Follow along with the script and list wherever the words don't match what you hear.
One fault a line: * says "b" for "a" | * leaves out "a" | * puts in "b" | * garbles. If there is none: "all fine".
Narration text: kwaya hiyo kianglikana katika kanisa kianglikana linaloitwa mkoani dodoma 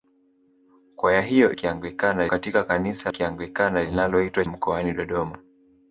all fine